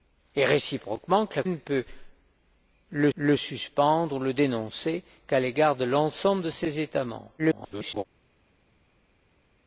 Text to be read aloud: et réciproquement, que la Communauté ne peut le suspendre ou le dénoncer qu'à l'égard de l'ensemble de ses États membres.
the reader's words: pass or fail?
fail